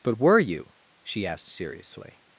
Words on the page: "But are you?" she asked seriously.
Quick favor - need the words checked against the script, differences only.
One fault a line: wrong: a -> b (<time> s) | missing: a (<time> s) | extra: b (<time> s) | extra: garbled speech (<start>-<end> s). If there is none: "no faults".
wrong: are -> were (0.2 s)